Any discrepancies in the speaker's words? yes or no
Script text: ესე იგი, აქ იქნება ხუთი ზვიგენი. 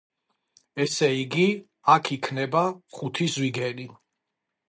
no